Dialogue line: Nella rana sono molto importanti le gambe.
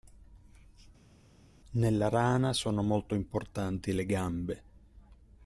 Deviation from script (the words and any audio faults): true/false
false